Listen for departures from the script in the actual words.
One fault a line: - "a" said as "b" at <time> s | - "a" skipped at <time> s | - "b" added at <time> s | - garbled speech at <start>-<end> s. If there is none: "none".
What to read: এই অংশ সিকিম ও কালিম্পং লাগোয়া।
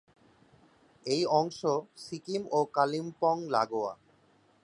none